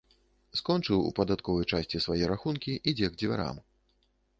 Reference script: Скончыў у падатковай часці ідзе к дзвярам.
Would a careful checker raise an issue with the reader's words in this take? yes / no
yes